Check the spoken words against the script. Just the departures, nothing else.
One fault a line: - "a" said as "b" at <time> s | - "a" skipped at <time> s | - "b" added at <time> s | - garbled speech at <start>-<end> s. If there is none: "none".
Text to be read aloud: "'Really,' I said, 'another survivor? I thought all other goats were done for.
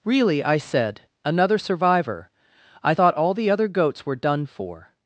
- "the" added at 3.3 s